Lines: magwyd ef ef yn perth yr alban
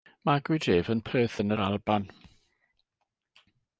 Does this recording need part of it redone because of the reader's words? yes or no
yes